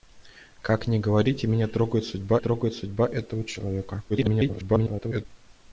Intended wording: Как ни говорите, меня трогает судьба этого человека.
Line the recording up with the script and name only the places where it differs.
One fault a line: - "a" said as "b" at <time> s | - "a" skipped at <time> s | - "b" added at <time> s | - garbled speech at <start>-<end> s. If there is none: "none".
- "трогает судьба" added at 2.4 s
- garbled speech at 4.1-5.3 s